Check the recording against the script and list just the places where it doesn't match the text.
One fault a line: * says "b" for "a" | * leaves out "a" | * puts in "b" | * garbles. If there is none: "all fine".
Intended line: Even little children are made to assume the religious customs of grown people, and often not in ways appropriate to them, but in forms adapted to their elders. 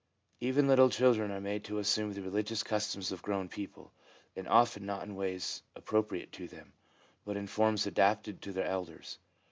all fine